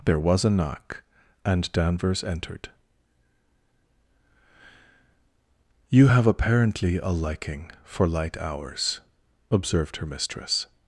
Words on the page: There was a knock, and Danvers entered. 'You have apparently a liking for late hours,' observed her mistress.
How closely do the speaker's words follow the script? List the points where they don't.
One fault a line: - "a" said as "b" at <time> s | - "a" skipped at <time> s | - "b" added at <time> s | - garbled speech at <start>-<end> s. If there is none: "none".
- "late" said as "light" at 8.1 s